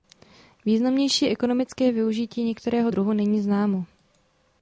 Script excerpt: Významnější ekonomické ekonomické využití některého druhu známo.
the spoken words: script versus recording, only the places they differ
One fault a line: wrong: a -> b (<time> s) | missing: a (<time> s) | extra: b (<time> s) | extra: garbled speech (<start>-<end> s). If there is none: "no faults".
missing: ekonomické (1.9 s)
extra: není (3.1 s)